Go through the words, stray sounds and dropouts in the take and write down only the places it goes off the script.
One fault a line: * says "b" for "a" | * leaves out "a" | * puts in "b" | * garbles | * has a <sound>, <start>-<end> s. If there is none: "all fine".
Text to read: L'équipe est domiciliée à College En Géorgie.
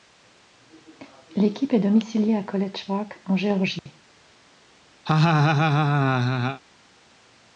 * puts in "Park"
* has a dropout, 3.8-3.9 s
* has a laugh, 5.1-6.6 s